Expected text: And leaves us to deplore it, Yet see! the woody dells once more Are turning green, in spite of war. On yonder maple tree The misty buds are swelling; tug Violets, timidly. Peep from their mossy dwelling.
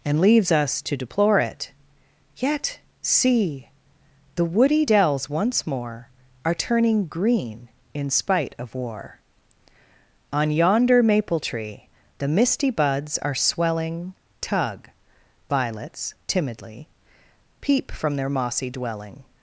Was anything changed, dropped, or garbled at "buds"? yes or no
no